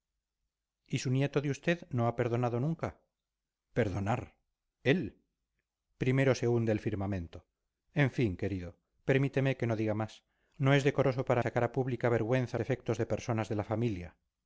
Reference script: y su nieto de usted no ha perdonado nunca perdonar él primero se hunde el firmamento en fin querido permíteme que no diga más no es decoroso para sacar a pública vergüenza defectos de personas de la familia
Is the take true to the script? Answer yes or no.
yes